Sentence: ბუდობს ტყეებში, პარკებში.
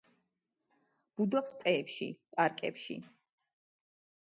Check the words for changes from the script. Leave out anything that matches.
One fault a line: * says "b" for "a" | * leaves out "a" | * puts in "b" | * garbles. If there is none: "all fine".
all fine